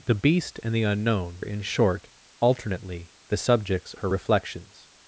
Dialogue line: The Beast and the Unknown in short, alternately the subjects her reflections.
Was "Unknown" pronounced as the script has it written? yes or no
yes